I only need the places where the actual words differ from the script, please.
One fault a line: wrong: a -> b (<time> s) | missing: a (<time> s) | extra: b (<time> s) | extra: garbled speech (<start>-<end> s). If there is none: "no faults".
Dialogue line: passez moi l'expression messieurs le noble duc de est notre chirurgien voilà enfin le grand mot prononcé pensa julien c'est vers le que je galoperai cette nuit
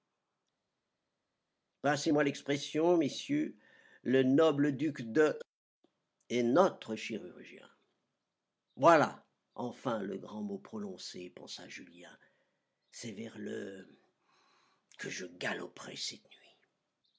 no faults